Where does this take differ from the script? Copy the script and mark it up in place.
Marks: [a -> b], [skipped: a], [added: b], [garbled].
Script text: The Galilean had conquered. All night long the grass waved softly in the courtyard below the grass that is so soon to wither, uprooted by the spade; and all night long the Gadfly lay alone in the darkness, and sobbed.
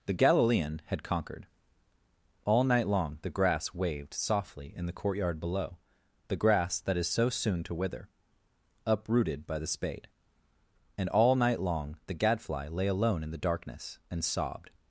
The Galilean had conquered. All night long the grass waved softly in the courtyard below the grass that is so soon to wither, uprooted by the spade; and all night long the Gadfly lay alone in the darkness, and sobbed.